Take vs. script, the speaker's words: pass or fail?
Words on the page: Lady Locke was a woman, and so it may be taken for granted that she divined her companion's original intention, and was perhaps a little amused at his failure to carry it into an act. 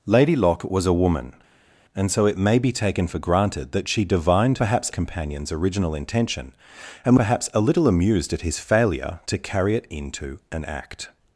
fail